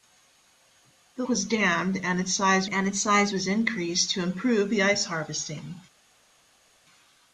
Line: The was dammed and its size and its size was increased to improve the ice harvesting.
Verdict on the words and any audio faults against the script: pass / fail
pass